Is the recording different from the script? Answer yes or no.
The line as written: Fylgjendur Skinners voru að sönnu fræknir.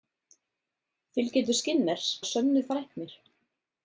yes